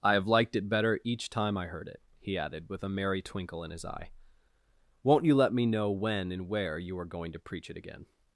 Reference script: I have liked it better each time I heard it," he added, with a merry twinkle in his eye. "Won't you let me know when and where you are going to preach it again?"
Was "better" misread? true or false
false